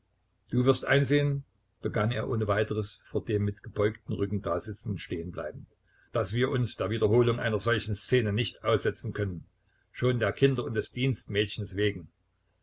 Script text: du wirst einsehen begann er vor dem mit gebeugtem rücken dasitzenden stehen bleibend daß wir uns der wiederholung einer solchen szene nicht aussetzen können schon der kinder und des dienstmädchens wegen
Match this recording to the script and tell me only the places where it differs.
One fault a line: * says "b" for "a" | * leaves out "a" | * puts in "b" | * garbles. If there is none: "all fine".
* puts in "ohne weiteres"